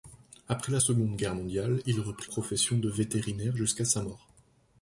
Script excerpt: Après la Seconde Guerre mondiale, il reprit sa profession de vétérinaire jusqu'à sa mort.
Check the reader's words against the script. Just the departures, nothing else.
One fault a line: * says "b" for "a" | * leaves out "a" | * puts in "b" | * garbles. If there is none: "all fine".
* leaves out "sa"